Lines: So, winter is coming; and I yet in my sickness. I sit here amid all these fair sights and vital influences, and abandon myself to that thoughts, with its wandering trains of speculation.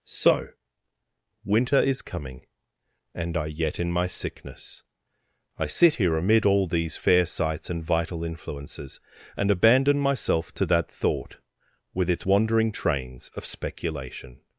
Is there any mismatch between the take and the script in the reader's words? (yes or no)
yes